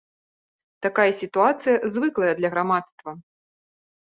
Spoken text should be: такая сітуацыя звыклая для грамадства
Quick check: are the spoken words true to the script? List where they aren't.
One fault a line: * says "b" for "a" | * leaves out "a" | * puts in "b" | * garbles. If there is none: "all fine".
all fine